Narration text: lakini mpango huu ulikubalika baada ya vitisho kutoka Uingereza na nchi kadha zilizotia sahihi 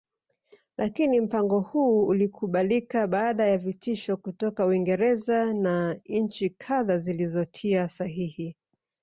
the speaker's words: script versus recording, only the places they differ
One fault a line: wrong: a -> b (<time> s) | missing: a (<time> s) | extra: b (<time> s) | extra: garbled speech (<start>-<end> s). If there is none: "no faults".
no faults